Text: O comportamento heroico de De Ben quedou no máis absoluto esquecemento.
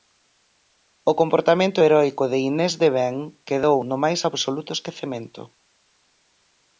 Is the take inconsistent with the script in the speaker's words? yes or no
yes